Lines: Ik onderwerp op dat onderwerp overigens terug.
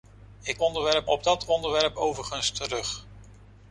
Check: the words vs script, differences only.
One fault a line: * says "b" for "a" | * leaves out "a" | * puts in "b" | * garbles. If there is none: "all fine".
all fine